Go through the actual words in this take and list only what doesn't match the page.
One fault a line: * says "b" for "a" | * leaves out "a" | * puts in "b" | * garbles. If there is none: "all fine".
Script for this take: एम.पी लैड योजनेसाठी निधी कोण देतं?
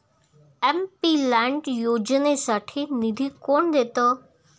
all fine